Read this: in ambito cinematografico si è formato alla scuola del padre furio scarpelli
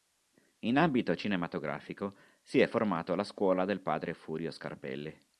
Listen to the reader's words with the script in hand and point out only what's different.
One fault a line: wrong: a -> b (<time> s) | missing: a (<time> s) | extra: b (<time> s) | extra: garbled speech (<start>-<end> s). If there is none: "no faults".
no faults